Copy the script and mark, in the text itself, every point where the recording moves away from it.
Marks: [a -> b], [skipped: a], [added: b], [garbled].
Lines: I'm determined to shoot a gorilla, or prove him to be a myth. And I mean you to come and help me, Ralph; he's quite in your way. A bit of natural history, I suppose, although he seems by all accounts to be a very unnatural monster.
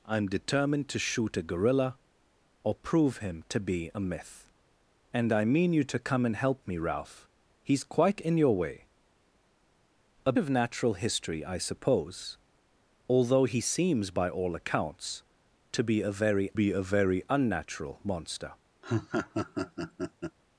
I'm determined to shoot a gorilla, or prove him to be a myth. And I mean you to come and help me, Ralph; he's quite in your way. A [skipped: bit] of natural history, I suppose, although he seems by all accounts to be a very [added: be a very] unnatural monster.